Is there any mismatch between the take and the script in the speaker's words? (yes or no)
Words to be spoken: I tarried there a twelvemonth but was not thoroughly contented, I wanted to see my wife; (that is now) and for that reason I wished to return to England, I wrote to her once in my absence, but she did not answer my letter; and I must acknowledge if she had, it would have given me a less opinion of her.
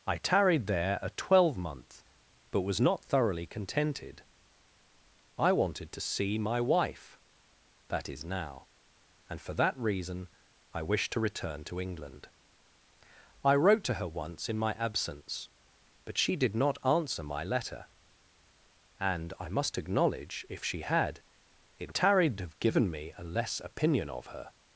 yes